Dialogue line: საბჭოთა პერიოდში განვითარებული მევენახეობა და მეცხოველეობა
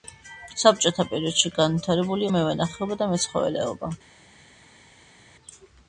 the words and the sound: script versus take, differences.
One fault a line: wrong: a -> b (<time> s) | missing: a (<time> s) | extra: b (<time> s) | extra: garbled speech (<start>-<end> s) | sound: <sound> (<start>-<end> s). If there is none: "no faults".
no faults